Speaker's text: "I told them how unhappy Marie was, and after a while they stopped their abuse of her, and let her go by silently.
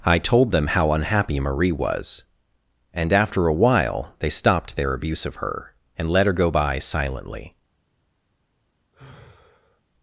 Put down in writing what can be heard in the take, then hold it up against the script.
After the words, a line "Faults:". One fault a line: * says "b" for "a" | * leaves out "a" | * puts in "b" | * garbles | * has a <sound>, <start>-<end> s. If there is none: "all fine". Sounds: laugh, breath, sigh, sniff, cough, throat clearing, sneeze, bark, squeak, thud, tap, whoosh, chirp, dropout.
"I told them how unhappy Marie was, and after a while they stopped their abuse of her, and let her go by silently.
Faults:
* has a sigh, 8.9-9.8 s